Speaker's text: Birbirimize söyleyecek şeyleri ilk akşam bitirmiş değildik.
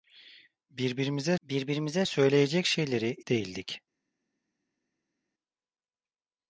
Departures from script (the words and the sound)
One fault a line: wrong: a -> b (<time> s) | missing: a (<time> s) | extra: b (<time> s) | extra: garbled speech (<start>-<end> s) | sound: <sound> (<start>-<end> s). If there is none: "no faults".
extra: birbirimize (1.4 s)
missing: ilk akşam bitirmiş (3.2 s)